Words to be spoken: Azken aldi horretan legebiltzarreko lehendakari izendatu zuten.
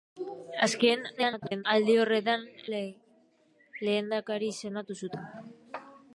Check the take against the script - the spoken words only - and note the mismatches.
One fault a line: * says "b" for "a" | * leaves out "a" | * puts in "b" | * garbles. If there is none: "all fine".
* garbles
* leaves out "legebiltzarreko"